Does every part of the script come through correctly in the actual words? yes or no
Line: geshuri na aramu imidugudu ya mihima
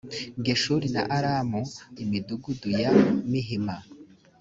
yes